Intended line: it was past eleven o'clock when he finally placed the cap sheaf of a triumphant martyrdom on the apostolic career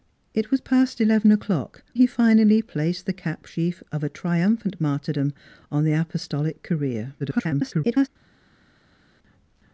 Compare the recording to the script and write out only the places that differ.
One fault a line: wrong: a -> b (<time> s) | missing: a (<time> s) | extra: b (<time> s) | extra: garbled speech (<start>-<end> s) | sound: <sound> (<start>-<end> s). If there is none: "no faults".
missing: when (1.8 s)
extra: garbled speech (7.2-8.1 s)